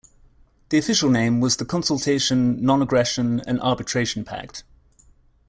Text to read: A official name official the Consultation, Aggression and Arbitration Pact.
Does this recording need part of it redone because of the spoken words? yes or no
yes